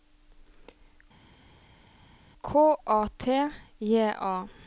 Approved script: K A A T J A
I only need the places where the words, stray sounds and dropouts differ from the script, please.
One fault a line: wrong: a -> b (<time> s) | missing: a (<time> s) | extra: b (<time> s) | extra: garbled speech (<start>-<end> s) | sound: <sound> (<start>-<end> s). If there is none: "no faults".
missing: A (3.1 s)